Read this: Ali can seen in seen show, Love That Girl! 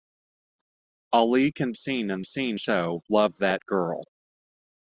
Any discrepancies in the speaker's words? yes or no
no